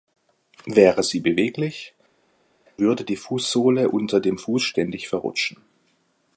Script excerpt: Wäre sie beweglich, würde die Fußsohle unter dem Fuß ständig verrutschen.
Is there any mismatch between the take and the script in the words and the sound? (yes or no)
no